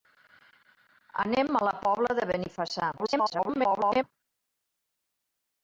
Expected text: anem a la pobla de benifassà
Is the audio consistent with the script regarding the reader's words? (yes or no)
no